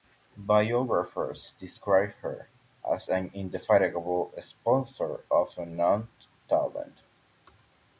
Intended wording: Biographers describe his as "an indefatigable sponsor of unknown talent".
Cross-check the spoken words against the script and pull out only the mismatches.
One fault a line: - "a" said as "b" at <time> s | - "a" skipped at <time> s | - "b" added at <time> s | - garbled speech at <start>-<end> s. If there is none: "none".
- "his" said as "her" at 2.2 s